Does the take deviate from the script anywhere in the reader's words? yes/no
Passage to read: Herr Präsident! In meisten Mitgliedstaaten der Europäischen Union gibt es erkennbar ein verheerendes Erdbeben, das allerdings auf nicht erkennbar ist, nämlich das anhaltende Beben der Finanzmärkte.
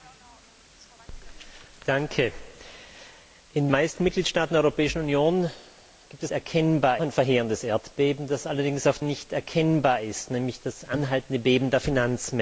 no